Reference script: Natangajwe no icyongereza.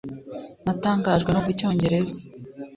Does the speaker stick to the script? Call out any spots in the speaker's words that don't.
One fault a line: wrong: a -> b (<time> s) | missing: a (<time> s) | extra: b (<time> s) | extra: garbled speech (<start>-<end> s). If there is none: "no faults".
no faults